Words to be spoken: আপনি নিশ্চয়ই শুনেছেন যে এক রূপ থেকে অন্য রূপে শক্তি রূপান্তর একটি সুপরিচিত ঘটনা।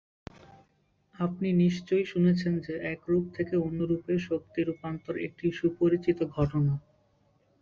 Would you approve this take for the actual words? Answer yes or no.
yes